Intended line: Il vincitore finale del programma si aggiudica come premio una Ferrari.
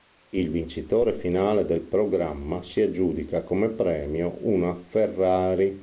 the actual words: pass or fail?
pass